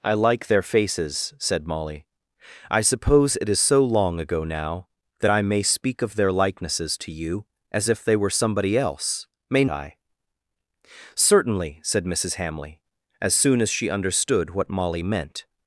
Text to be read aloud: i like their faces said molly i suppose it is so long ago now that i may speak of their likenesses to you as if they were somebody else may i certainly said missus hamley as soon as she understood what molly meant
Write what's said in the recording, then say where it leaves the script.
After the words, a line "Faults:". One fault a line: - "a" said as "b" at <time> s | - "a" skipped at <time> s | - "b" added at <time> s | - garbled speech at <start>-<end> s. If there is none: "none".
i like their faces said molly i suppose it is so long ago now that i may speak of their likenesses to you as if they were somebody else may i certainly said missus hamley as soon as she understood what molly meant
Faults:
none